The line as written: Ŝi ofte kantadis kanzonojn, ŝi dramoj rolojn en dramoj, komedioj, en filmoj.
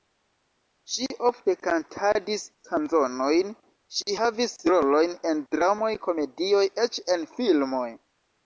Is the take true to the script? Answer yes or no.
no